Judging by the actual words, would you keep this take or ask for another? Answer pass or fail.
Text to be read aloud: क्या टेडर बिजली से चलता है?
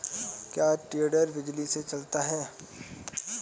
pass